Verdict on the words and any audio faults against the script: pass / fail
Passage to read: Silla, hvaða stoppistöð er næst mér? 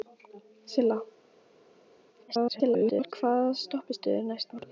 fail